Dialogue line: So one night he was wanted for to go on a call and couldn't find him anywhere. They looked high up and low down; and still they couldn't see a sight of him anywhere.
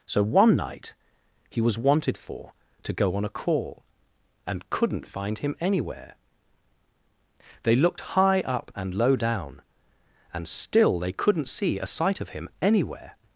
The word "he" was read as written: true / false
true